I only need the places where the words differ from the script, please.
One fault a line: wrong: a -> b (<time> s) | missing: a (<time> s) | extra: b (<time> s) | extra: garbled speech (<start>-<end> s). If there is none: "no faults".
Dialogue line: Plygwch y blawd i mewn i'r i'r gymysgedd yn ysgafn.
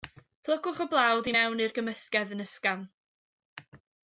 missing: i'r (1.7 s)